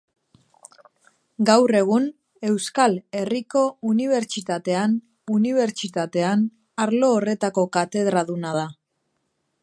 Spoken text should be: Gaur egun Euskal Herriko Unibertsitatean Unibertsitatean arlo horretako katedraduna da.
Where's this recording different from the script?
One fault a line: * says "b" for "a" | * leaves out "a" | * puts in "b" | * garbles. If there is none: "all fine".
all fine